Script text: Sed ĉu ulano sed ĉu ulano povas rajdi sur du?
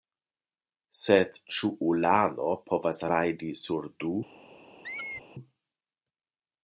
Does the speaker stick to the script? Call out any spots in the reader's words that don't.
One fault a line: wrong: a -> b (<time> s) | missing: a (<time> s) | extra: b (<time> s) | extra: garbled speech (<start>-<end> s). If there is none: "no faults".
missing: sed ĉu ulano (2.5 s)